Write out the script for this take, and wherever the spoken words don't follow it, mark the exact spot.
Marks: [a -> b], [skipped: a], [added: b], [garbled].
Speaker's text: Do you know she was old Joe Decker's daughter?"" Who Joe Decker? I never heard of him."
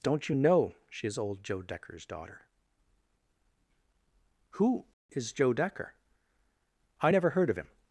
[Do -> Don't] you know she [was -> is] old Joe Decker's daughter?"" Who [added: is] Joe Decker? I never heard of him."